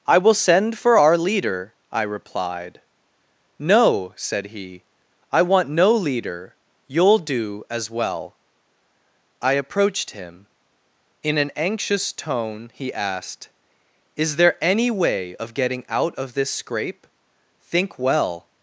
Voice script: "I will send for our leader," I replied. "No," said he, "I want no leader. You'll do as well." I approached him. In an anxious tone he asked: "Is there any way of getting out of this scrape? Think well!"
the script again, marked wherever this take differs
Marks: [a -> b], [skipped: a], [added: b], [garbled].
"I will send for our leader," I replied. "No," said he, "I want no leader. You'll do as well." I approached him. In an anxious tone he asked: "Is there any way of getting out of this scrape? Think well!"